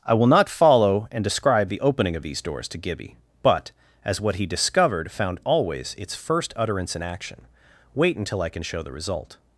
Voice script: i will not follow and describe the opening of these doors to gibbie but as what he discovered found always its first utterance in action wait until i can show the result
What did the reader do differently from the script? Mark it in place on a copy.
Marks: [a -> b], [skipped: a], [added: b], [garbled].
i will not follow and describe the opening of these doors to gibbie but as what he discovered found always its first utterance in action wait until i can show the result